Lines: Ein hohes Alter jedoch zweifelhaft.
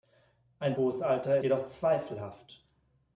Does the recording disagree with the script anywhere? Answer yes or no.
no